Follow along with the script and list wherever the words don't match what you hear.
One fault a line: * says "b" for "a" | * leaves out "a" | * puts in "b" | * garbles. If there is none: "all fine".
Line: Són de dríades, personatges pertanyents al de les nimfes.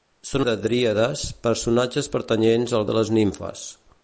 all fine